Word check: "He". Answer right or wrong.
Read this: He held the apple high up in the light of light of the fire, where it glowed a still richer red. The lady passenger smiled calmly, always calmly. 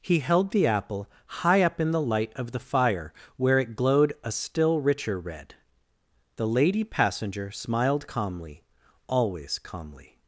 right